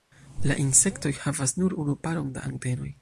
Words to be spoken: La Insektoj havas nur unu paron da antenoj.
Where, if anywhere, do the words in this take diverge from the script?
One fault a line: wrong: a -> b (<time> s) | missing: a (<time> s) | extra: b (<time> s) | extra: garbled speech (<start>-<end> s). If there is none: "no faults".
no faults